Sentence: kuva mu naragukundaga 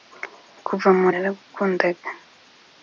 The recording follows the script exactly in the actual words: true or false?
true